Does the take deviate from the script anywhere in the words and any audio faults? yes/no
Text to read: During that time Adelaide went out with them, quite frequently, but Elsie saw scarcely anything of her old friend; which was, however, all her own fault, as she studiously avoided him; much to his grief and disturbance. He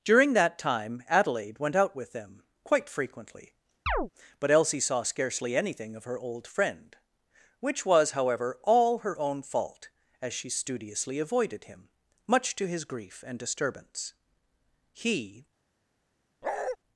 yes